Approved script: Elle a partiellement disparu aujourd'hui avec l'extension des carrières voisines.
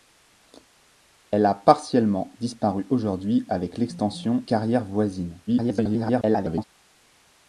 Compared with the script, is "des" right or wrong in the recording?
wrong